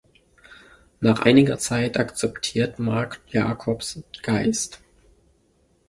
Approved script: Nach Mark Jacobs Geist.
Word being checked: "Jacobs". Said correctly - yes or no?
yes